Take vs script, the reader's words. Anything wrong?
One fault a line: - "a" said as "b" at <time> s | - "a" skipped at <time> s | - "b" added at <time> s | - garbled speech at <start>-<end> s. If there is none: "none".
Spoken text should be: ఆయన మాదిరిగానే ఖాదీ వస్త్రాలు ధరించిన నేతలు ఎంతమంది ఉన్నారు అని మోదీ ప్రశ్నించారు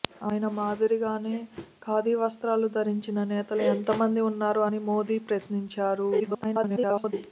- garbled speech at 6.2-7.1 s